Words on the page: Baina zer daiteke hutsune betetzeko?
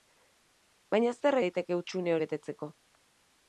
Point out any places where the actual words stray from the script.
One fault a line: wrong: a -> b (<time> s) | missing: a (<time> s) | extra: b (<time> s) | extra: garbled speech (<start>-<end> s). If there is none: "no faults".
no faults